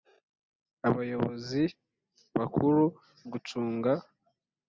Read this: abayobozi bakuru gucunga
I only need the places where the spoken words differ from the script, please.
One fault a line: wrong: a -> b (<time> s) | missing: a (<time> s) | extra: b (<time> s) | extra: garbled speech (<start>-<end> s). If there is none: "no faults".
no faults